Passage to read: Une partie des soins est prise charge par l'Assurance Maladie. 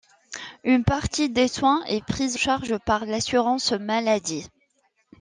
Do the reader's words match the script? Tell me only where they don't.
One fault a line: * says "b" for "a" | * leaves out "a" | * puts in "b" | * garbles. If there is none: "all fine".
all fine